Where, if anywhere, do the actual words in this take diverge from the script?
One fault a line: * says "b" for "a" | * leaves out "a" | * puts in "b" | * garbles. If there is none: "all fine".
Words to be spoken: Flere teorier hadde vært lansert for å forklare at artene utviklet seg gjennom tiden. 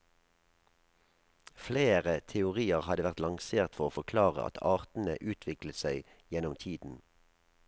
all fine